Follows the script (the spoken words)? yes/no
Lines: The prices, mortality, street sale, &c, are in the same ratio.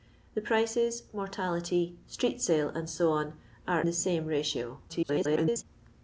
no